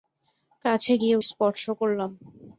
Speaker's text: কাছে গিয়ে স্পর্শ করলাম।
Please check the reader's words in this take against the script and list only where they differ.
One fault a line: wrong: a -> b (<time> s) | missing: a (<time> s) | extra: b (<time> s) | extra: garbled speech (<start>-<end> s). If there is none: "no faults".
no faults